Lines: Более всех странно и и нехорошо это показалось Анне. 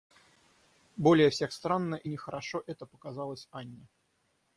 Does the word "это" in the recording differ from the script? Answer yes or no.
no